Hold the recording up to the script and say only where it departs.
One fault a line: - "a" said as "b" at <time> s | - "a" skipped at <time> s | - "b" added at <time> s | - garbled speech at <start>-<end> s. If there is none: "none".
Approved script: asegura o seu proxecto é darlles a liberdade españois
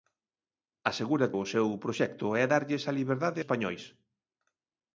none